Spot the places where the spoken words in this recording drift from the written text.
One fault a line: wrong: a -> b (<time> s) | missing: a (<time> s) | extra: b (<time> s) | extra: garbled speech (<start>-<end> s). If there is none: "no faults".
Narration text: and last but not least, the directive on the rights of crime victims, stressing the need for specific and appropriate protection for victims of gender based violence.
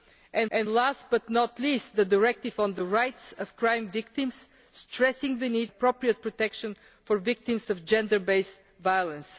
extra: and (0.5 s)
missing: for specific and (5.7 s)